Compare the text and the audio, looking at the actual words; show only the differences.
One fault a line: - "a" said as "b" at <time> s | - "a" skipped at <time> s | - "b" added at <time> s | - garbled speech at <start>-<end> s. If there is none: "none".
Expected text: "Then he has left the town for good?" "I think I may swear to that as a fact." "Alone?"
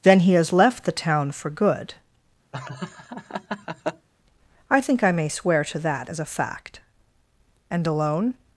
- "And" added at 7.7 s